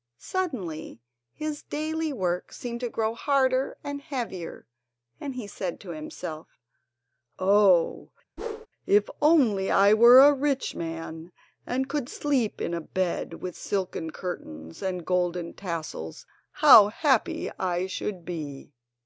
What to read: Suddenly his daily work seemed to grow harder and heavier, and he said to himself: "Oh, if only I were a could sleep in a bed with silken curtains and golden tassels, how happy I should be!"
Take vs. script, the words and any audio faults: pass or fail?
fail